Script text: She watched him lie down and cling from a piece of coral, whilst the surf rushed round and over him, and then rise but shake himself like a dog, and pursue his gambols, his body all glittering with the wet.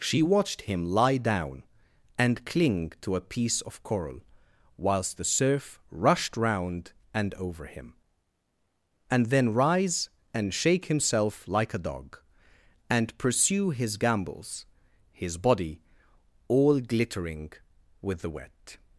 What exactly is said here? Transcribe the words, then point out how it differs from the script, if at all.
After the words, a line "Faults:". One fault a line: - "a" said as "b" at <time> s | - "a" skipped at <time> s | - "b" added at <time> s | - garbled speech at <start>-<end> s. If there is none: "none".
She watched him lie down and cling to a piece of coral, whilst the surf rushed round and over him, and then rise and shake himself like a dog, and pursue his gambols, his body all glittering with the wet.
Faults:
- "from" said as "to" at 3.0 s
- "but" said as "and" at 10.3 s